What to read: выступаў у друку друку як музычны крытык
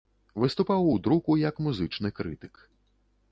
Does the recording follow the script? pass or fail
fail